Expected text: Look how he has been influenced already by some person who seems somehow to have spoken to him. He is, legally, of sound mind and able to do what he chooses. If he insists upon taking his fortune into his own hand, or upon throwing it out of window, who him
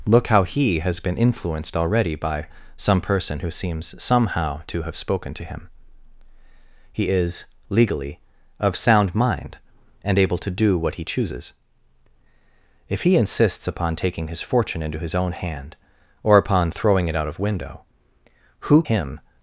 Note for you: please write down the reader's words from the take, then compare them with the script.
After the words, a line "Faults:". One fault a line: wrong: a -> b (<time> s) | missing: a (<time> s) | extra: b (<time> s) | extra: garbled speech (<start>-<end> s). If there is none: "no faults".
Look how he has been influenced already by some person who seems somehow to have spoken to him. He is, legally, of sound mind and able to do what he chooses. If he insists upon taking his fortune into his own hand, or upon throwing it out of window, who him
Faults:
no faults